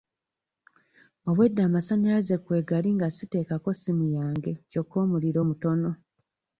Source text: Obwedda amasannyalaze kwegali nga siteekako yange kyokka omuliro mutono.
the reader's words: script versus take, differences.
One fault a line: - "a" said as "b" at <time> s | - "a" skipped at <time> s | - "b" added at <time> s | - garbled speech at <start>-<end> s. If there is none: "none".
- "ssimu" added at 3.8 s